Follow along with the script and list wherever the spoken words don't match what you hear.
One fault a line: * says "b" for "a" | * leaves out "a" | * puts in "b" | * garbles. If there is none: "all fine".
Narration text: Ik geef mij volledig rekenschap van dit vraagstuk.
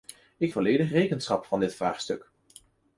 * leaves out "geef mij"